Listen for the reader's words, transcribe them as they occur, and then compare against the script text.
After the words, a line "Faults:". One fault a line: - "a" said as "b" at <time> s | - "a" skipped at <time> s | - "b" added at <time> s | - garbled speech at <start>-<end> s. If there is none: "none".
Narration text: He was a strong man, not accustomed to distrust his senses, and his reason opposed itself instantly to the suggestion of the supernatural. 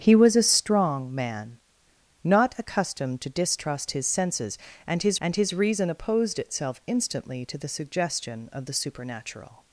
He was a strong man, not accustomed to distrust his senses, and his and his reason opposed itself instantly to the suggestion of the supernatural.
Faults:
- "and his" added at 5.2 s